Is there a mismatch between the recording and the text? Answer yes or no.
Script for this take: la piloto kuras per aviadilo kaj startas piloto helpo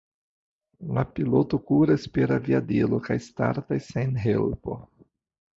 yes